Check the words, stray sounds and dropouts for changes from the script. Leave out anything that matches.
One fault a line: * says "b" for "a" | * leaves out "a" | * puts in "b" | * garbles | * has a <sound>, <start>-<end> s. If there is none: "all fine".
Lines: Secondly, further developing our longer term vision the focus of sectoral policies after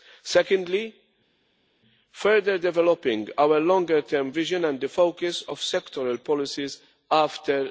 * puts in "and"